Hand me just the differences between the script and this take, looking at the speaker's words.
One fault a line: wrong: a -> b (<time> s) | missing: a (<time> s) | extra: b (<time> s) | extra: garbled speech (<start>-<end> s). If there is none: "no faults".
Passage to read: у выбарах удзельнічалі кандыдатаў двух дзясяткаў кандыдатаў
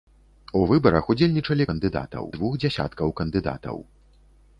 no faults